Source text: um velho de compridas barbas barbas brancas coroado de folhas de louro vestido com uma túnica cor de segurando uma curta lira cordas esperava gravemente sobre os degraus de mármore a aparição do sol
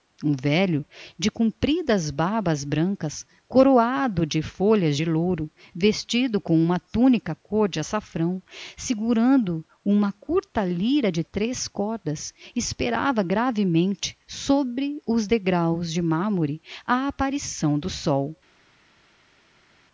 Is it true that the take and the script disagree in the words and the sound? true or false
true